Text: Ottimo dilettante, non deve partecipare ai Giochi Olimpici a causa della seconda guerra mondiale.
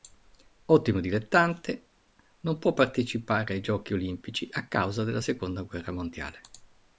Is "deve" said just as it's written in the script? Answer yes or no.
no